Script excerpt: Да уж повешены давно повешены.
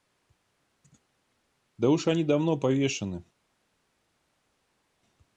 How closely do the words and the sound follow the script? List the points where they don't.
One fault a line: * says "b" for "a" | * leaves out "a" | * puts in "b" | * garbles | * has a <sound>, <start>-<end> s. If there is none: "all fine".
* says "они" for "повешены"